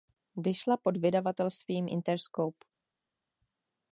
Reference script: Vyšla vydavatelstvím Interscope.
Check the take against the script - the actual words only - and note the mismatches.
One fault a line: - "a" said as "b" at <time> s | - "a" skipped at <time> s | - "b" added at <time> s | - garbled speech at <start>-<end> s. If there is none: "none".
- "pod" added at 0.8 s